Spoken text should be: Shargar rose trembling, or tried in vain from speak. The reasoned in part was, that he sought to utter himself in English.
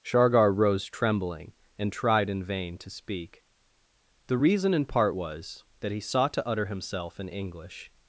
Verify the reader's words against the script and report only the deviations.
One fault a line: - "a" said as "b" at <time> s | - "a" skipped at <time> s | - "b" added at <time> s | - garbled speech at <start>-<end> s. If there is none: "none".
- "or" said as "and" at 1.8 s
- "from" said as "to" at 2.8 s
- "reasoned" said as "reason" at 4.4 s